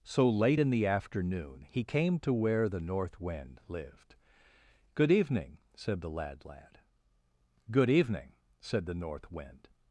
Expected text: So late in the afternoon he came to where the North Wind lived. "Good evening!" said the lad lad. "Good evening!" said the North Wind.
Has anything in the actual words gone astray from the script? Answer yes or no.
no